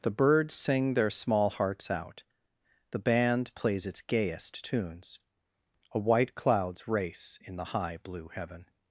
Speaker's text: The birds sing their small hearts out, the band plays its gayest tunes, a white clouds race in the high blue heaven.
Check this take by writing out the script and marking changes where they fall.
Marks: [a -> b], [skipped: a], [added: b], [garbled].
The birds sing their small hearts out, the band plays its gayest tunes, a white clouds race in the high blue heaven.